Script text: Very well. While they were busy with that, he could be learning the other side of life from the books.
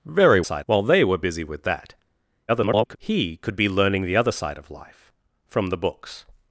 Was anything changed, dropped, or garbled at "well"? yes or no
yes